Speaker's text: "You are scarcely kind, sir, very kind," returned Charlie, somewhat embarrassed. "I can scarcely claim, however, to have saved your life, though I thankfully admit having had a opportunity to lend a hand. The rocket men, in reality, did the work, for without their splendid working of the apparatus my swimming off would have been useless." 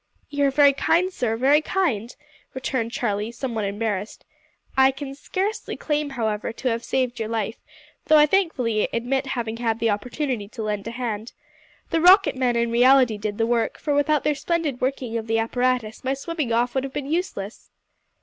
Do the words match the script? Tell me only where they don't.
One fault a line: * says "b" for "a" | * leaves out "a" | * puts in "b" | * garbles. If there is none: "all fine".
* says "very" for "scarcely"
* says "the" for "a"